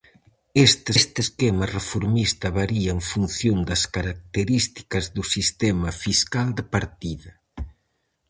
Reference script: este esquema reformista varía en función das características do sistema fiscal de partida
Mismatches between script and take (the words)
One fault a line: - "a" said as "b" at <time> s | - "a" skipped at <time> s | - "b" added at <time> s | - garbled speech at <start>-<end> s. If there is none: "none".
- "este" added at 1.0 s